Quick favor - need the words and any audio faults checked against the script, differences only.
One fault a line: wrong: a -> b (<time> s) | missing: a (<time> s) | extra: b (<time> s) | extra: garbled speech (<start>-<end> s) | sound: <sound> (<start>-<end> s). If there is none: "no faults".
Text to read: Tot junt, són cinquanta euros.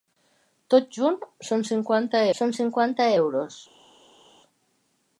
extra: són cinquanta (2.4 s)